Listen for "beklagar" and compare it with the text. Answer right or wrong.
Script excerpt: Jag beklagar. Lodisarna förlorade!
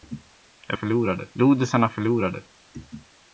wrong